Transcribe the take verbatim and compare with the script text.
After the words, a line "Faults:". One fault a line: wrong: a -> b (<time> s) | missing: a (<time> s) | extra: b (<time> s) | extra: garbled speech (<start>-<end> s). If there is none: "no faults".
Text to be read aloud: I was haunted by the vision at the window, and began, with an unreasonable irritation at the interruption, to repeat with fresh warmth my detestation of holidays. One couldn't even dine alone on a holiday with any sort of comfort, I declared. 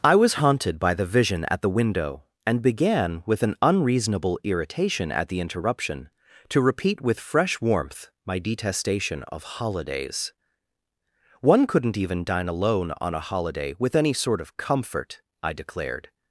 I was haunted by the vision at the window, and began, with an unreasonable irritation at the interruption, to repeat with fresh warmth my detestation of holidays. One couldn't even dine alone on a holiday with any sort of comfort, I declared.
Faults:
no faults